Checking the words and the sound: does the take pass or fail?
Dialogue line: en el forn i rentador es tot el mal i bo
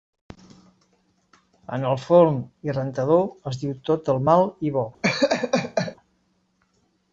fail